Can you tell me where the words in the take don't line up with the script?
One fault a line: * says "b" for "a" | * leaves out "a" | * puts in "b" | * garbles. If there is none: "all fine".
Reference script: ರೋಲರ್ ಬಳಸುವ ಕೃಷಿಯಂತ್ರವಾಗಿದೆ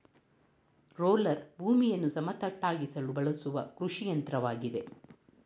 * puts in "ಭೂಮಿಯನ್ನು ಸಮತಟ್ಟಾಗಿಸಲು"